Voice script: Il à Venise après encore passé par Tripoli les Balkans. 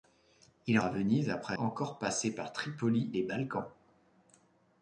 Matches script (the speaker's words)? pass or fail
pass